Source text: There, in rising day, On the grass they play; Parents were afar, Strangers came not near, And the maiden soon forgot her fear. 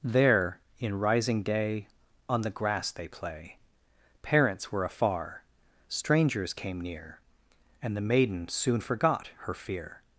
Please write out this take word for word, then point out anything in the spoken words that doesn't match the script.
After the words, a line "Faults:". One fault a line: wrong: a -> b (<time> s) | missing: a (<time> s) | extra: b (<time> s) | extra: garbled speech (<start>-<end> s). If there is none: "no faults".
There, in rising day, On the grass they play; Parents were afar, Strangers came near, And the maiden soon forgot her fear.
Faults:
missing: not (6.8 s)